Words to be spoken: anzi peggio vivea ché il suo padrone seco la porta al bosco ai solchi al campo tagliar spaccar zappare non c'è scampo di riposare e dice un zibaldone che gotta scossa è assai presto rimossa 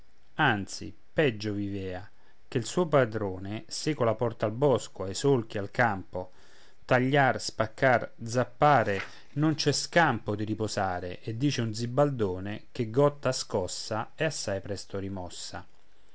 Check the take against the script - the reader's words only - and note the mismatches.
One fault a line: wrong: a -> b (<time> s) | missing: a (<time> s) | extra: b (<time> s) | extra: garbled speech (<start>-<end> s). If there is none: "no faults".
no faults